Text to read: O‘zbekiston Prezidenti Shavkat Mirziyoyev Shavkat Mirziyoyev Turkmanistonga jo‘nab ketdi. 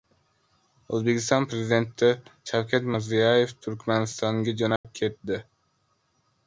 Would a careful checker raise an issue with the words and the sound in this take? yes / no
yes